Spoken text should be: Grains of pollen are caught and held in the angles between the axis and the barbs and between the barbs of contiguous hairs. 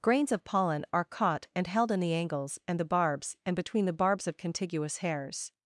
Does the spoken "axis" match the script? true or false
false